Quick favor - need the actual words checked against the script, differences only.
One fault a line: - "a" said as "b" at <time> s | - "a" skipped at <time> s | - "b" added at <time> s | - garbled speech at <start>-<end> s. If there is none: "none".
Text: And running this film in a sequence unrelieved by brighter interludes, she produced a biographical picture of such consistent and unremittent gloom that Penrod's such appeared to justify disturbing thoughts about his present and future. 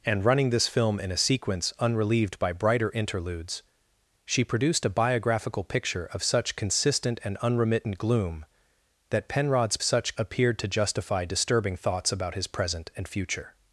none